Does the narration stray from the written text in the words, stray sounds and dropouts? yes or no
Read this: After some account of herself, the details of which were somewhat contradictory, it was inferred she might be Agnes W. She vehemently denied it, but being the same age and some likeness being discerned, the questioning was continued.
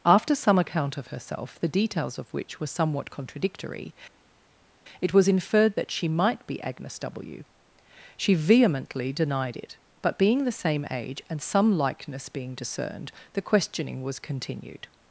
yes